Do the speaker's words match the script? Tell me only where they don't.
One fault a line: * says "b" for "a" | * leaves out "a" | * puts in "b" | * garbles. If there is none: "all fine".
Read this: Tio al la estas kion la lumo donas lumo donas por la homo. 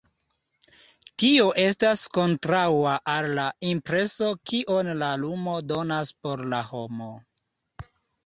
* puts in "estas kontraŭa"
* says "impreso" for "estas"
* leaves out "lumo donas"